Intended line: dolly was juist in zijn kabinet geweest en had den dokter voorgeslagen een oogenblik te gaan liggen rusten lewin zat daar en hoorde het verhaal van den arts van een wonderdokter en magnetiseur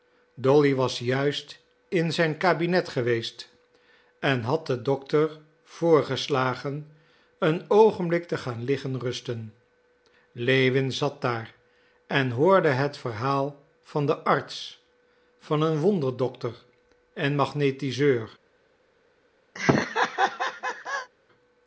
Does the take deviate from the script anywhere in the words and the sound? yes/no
yes